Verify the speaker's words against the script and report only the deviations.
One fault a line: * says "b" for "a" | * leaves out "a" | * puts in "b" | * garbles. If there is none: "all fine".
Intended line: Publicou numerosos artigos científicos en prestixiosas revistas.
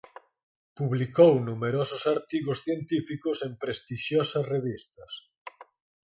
all fine